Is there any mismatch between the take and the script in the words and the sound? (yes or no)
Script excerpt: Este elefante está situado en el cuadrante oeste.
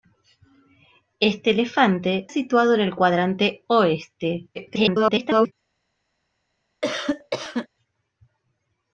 yes